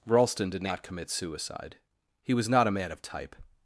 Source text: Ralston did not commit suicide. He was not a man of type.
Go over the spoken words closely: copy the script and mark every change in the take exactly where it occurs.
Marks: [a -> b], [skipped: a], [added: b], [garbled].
Ralston did not commit suicide. He was not a man of type.